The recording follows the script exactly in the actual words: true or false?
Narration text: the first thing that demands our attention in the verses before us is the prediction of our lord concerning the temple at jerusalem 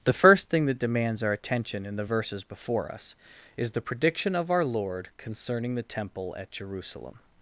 true